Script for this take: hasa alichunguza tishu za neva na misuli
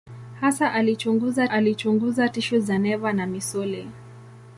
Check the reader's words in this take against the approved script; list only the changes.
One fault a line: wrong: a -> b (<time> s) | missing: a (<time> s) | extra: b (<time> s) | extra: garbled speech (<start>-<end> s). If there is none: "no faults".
extra: alichunguza (1.5 s)